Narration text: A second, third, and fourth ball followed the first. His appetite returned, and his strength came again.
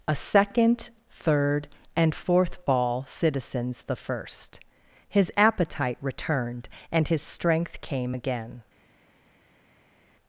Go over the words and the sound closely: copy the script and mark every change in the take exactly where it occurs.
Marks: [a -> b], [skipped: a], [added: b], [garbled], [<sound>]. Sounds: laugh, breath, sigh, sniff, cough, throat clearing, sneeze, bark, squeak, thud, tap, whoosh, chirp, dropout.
A second, third, and fourth ball [followed -> citizens] the first. His appetite returned, and his strength came again.